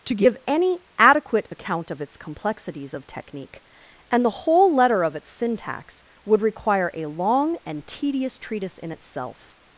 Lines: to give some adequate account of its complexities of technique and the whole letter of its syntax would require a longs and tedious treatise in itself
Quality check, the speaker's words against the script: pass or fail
fail